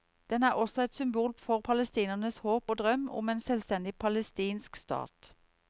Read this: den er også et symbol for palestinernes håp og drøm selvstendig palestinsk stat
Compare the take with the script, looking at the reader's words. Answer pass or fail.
fail